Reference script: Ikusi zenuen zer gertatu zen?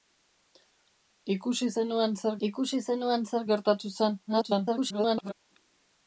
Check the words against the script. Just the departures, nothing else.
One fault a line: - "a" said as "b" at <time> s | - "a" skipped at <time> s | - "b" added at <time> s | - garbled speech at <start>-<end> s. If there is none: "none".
- "ikusi zenuen zer" added at 2.5 s
- garbled speech at 4.3-5.3 s